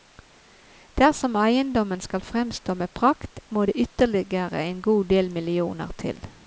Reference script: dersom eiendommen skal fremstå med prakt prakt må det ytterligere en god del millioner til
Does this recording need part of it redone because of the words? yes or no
yes